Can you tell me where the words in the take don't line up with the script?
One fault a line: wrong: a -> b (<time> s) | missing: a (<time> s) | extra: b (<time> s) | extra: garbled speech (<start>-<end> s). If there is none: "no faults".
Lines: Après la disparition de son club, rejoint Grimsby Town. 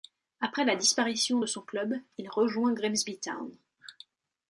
extra: il (2.2 s)